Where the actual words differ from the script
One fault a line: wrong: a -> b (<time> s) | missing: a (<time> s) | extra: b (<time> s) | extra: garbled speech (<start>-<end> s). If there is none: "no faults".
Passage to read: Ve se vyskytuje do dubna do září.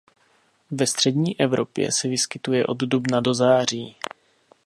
extra: střední Evropě (0.9 s)
wrong: do -> od (2.6 s)